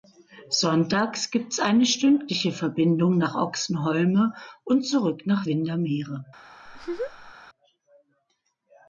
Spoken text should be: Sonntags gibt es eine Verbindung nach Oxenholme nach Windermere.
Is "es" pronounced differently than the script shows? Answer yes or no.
no